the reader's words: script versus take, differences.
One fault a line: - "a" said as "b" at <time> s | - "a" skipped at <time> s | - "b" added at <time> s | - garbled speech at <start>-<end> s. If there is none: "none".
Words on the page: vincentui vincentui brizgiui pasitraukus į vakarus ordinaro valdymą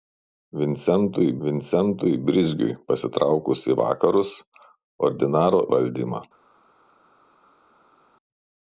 none